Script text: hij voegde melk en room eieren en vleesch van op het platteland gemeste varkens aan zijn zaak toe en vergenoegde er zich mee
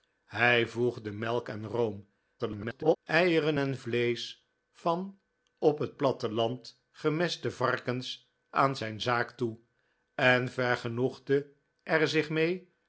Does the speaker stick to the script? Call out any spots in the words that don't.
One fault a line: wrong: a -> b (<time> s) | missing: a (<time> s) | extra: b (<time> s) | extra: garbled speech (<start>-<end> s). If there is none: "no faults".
extra: garbled speech (2.4-3.0 s)